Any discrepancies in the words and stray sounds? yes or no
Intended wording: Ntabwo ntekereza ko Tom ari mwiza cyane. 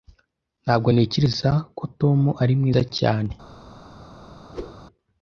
yes